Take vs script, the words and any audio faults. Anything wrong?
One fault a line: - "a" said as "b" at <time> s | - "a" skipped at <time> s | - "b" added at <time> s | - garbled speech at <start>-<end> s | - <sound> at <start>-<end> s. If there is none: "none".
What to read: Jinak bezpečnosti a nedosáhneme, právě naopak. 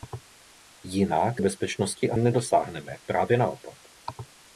none